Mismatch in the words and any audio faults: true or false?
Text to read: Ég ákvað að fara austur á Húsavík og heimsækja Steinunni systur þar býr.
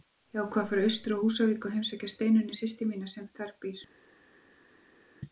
true